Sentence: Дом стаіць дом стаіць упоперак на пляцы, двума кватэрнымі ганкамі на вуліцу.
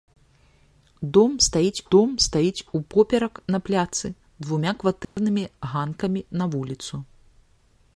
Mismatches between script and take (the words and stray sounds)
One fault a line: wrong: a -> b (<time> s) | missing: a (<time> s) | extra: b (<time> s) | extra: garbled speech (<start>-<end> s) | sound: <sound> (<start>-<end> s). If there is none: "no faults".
sound: dropout (5.0-5.2 s)